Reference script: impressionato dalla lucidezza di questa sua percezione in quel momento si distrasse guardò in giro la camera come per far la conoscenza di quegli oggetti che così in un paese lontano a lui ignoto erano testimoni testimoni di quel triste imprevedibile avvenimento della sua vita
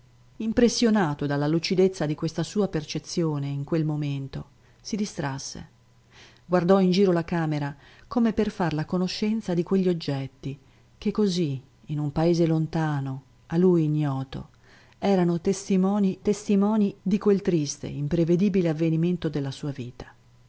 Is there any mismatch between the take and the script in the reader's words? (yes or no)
no